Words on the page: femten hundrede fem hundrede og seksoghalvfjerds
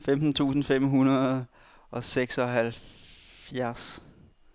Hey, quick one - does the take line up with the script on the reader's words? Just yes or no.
no